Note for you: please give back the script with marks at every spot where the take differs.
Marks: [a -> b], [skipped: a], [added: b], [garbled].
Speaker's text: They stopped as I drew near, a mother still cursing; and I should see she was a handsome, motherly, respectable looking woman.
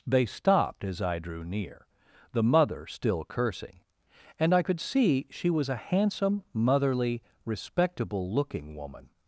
They stopped as I drew near, [a -> the] mother still cursing; and I [should -> could] see she was a handsome, motherly, respectable looking woman.